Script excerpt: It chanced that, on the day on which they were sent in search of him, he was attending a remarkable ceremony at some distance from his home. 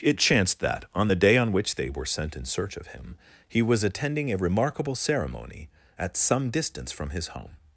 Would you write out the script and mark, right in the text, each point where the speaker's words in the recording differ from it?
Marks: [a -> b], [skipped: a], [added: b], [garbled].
It chanced that, on the day on which they were sent in search of him, he was attending a remarkable ceremony at some distance from his home.